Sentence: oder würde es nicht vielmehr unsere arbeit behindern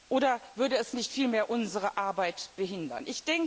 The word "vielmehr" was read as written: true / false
true